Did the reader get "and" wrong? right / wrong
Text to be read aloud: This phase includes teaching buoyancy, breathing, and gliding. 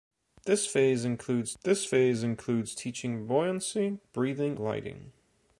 wrong